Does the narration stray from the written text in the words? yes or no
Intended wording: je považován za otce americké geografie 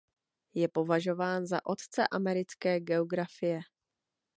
no